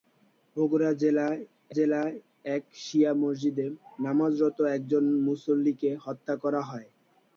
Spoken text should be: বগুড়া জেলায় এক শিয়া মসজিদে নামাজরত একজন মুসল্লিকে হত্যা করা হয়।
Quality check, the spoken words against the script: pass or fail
fail